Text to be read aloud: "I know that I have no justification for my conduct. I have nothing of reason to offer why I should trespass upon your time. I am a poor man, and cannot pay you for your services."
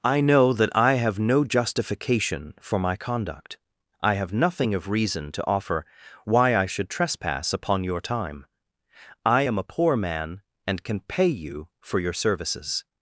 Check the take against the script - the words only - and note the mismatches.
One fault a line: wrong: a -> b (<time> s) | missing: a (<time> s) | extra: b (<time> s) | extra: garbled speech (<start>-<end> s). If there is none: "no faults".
wrong: cannot -> can (10.8 s)